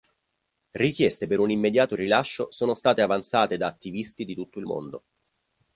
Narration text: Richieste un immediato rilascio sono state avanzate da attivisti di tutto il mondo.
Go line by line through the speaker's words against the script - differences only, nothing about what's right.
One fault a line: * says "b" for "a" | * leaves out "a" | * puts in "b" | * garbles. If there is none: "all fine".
* puts in "per"